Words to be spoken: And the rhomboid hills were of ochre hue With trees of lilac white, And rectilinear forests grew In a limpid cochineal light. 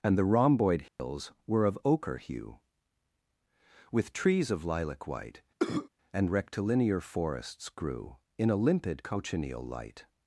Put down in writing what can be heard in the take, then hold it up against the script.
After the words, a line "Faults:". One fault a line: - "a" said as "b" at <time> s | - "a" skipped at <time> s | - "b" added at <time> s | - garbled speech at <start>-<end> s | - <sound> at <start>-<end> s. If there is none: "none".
And the rhomboid hills were of ochre hue With trees of lilac white, And rectilinear forests grew In a limpid cochineal light.
Faults:
- dropout at 0.9-1.0 s
- cough at 5.6-5.9 s